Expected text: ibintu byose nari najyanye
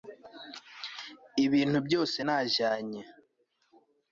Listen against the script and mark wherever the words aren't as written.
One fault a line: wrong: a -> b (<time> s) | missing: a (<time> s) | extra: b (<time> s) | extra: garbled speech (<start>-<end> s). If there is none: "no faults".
missing: nari (2.2 s)